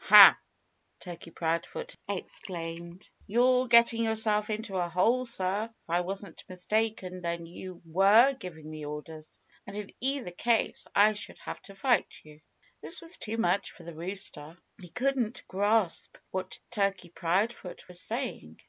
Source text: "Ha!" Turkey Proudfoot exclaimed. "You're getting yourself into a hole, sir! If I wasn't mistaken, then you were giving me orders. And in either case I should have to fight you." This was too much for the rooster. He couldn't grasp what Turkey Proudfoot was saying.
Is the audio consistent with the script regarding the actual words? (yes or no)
yes